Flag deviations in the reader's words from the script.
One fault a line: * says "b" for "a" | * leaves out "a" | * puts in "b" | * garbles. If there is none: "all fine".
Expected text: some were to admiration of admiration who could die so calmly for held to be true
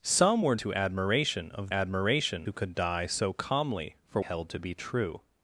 all fine